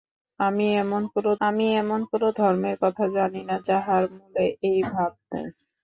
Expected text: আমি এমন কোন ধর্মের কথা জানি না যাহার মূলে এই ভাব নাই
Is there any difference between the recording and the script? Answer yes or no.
yes